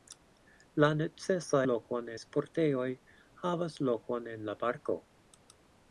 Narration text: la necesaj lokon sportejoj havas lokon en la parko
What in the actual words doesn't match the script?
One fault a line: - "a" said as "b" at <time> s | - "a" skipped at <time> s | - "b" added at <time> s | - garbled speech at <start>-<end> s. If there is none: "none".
none